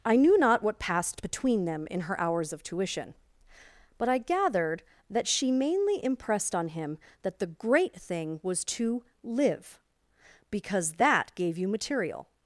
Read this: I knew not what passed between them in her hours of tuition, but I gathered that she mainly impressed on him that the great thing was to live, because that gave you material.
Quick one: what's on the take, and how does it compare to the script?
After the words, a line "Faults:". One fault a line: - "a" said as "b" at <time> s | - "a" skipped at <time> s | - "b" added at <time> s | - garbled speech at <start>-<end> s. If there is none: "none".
I knew not what passed between them in her hours of tuition, but I gathered that she mainly impressed on him that the great thing was to live, because that gave you material.
Faults:
none